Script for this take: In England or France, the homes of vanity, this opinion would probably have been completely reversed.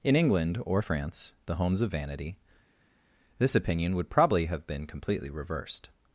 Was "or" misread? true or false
false